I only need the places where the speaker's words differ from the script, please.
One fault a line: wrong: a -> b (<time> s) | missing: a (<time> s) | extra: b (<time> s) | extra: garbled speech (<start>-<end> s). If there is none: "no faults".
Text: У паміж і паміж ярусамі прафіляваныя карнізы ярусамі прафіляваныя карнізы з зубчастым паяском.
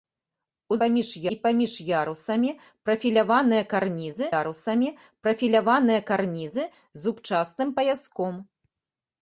no faults